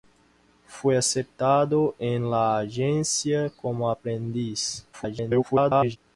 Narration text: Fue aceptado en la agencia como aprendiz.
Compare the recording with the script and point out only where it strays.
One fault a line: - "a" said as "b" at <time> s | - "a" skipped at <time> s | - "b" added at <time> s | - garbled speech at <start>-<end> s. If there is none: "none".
- garbled speech at 4.9-6.0 s